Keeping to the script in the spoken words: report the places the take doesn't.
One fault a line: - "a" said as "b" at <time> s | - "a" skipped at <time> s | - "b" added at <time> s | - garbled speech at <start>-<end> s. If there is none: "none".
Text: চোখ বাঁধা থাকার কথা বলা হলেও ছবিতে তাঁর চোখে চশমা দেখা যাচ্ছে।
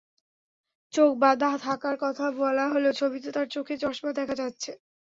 none